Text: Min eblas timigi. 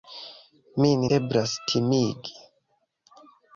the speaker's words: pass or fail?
pass